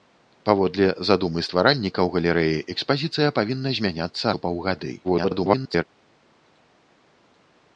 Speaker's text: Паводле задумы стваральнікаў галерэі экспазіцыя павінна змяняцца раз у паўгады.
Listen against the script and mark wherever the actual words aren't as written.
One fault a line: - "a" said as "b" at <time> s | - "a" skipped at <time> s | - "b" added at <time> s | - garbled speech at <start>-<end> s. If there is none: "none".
- "раз" skipped at 4.3 s
- garbled speech at 5.0-5.8 s